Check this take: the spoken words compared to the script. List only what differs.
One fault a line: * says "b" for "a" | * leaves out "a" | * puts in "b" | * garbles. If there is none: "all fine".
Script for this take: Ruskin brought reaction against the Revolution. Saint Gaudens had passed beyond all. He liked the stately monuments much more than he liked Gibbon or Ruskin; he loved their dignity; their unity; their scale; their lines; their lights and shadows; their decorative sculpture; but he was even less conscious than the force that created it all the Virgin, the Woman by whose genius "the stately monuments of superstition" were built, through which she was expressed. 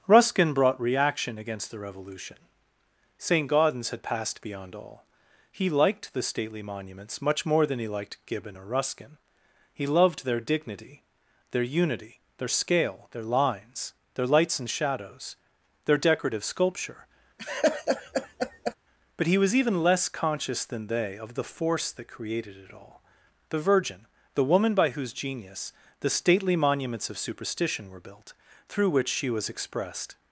* puts in "they of"